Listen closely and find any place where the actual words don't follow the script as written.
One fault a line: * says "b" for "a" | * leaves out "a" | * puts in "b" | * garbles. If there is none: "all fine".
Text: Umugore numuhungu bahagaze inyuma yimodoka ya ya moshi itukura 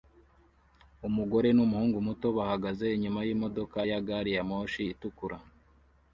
* puts in "muto"
* puts in "gari"